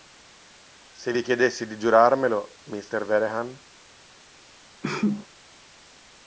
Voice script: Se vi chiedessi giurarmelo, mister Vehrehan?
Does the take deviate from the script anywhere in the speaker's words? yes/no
yes